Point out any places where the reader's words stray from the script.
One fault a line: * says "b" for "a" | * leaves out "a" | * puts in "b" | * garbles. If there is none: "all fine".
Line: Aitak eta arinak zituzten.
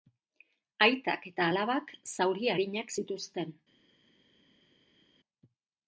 * puts in "alabak zauri"